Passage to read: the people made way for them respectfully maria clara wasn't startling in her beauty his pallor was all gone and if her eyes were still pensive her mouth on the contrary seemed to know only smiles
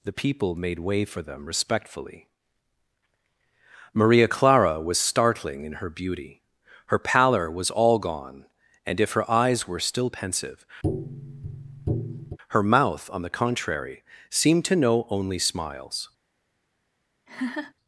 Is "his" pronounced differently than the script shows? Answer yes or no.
yes